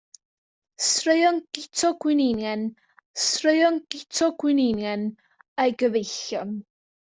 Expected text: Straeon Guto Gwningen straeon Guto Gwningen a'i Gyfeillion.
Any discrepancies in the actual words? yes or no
no